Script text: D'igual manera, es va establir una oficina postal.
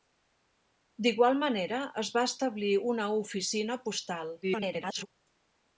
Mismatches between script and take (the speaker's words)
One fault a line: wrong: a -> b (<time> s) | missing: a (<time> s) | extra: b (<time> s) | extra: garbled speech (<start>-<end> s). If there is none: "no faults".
extra: garbled speech (4.4-5.1 s)